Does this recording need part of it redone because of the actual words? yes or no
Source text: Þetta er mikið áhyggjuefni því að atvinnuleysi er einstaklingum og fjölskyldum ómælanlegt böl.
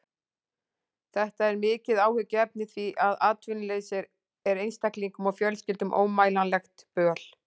no